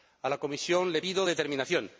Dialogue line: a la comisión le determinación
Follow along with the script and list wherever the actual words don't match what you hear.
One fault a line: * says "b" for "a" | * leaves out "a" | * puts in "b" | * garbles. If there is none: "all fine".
* puts in "pido"